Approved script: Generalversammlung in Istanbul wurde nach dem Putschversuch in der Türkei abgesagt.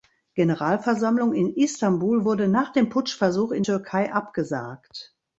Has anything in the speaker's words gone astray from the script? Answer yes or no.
yes